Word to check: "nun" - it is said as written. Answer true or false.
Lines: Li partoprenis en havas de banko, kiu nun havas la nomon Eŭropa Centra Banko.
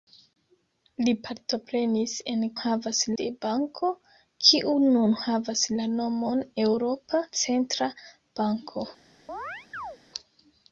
true